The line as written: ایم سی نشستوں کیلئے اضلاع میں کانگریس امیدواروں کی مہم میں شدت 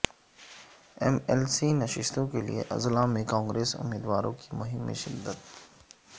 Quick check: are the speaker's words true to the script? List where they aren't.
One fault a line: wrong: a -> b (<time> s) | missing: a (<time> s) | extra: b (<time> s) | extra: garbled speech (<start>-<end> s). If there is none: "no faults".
extra: ایل (1.3 s)